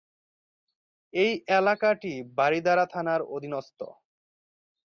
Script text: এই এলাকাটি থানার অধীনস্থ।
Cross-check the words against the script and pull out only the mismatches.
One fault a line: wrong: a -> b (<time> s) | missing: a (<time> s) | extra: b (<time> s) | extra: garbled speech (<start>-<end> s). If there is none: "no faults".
extra: বারিধারা (2.4 s)